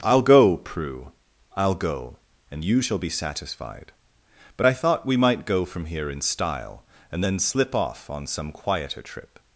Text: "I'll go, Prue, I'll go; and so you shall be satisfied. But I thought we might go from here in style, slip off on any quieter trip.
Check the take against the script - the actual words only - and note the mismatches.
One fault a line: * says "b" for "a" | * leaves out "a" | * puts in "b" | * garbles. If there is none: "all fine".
* leaves out "so"
* puts in "and then"
* says "some" for "any"